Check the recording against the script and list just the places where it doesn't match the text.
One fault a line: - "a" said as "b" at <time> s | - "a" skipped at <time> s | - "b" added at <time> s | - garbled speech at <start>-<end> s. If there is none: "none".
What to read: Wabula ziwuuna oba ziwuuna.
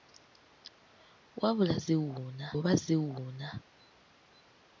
none